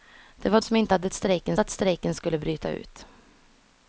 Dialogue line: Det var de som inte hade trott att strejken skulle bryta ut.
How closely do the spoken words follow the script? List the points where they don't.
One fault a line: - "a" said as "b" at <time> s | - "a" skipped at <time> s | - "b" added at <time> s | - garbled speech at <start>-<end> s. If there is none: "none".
- "de" skipped at 0.6 s
- "trott" said as "strejken" at 1.1 s